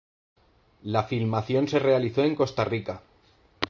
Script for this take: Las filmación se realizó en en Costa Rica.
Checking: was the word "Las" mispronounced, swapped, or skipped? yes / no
yes